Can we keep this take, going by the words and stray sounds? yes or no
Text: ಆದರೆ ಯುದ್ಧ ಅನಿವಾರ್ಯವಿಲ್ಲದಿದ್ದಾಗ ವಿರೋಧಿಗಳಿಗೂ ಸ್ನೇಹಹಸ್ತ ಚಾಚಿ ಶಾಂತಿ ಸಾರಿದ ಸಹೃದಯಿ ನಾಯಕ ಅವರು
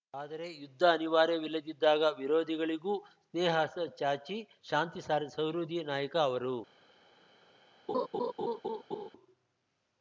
no